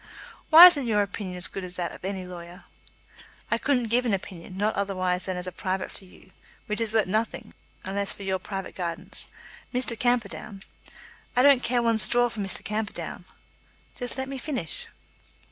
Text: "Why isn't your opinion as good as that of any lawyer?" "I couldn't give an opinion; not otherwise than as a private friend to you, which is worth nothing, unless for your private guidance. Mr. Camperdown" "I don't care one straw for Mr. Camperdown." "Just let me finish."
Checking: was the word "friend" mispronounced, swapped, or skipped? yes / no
yes